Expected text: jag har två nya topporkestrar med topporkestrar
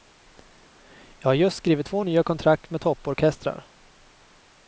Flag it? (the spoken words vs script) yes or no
yes